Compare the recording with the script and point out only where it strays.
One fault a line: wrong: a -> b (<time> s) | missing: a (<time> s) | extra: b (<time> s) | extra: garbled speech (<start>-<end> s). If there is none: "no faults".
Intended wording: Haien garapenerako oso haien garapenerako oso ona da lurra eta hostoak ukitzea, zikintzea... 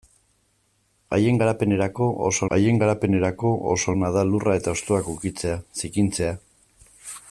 no faults